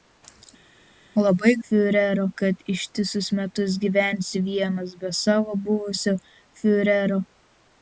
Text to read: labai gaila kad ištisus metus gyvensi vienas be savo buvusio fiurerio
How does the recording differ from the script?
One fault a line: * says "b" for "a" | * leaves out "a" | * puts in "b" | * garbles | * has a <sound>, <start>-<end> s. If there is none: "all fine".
* says "fiurerio" for "gaila"